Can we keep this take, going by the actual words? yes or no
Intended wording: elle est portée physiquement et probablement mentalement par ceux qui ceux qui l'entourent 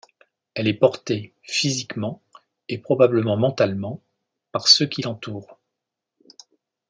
no